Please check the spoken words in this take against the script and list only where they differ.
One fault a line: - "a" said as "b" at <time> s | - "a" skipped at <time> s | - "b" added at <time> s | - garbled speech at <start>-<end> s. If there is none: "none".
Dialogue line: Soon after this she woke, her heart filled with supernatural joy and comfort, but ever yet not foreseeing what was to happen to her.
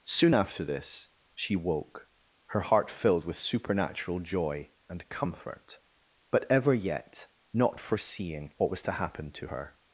none